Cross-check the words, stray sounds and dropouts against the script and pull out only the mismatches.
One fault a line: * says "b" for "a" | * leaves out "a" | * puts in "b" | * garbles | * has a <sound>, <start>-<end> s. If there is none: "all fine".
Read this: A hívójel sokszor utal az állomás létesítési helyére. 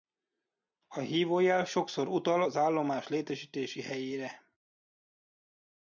all fine